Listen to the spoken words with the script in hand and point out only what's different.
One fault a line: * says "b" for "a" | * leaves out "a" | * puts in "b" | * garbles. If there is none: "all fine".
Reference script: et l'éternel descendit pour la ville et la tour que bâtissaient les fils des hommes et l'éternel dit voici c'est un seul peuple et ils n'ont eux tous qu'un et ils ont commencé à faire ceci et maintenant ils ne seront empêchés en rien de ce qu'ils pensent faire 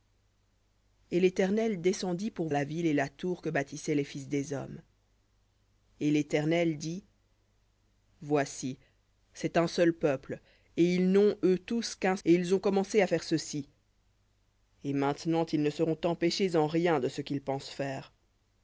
all fine